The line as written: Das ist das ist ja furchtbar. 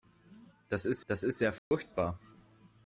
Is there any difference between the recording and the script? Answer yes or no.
no